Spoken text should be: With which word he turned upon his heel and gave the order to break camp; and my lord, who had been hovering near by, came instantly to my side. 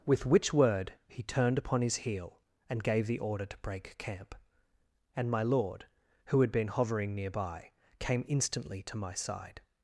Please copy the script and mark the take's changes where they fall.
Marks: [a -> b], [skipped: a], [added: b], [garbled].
With which word he turned upon his heel and gave the order to break camp; and my lord, who had been hovering near by, came instantly to my side.